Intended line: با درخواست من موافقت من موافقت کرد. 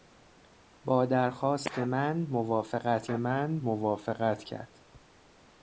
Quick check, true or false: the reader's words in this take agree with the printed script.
true